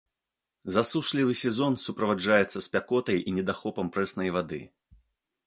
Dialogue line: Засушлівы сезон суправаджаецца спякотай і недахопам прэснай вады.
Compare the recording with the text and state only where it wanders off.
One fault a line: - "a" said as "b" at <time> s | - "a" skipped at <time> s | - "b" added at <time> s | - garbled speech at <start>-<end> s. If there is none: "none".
none